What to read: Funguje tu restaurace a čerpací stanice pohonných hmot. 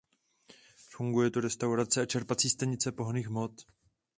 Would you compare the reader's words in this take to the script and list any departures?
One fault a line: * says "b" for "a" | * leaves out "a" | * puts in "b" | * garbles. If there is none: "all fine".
all fine